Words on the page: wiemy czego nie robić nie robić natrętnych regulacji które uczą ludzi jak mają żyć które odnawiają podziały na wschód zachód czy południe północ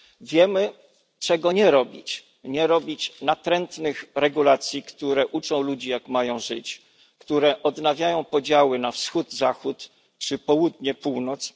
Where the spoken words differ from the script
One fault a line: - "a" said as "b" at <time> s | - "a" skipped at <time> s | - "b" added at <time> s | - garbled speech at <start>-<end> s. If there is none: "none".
none